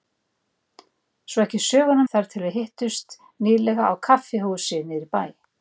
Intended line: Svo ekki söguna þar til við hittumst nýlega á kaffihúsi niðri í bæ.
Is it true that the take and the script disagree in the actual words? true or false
false